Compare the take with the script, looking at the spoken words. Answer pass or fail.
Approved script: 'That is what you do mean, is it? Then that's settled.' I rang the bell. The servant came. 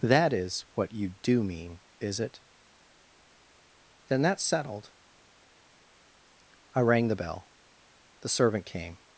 pass